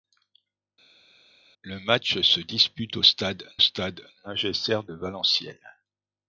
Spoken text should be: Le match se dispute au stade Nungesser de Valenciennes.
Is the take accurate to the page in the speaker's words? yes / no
no